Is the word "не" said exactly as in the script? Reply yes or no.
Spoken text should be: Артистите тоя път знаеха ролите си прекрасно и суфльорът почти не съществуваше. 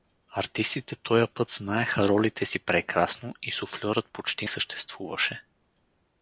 no